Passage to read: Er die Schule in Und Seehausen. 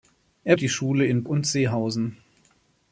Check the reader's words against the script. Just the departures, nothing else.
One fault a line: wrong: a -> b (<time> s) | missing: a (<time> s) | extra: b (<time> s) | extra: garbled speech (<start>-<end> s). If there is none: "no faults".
no faults